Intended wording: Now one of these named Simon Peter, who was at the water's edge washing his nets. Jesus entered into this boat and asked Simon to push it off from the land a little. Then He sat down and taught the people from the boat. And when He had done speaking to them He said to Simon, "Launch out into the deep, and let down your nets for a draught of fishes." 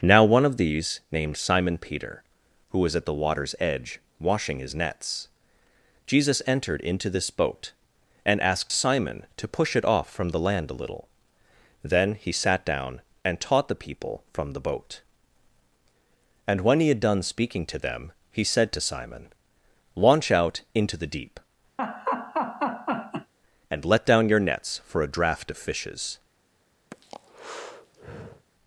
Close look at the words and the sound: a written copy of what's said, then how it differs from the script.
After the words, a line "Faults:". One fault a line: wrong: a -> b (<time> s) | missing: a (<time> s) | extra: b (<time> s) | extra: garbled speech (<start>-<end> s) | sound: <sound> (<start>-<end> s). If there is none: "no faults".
Now one of these named Simon Peter, who was at the water's edge washing his nets. Jesus entered into this boat and asked Simon to push it off from the land a little. Then He sat down and taught the people from the boat. And when He had done speaking to them He said to Simon, "Launch out into the deep, and let down your nets for a draught of fishes."
Faults:
sound: laugh (21.8-23.3 s)
sound: breath (26.9-28.5 s)